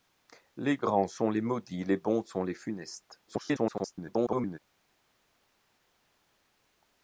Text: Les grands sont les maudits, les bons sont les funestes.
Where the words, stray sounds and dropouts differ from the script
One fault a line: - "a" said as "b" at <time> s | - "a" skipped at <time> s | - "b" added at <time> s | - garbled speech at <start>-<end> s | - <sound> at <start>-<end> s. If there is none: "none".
- garbled speech at 3.3-4.6 s